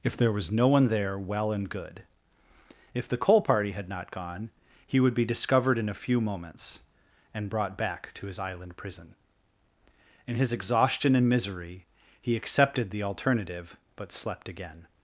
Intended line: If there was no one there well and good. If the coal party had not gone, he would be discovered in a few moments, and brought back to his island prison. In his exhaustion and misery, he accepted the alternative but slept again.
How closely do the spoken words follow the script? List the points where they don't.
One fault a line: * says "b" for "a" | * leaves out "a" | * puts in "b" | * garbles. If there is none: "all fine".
all fine